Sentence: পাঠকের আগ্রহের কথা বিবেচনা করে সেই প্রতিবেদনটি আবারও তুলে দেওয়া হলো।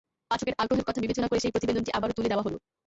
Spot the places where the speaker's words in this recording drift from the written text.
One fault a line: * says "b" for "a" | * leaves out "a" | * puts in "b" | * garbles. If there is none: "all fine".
all fine